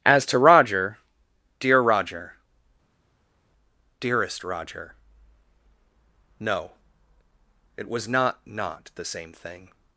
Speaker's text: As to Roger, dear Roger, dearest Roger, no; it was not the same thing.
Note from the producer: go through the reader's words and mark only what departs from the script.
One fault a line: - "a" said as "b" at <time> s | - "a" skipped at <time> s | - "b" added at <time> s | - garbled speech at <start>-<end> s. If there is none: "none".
- "not" added at 8.5 s